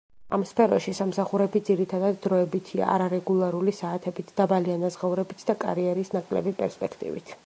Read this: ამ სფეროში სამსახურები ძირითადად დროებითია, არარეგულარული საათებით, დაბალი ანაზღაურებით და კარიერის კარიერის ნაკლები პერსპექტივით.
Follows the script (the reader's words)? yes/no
no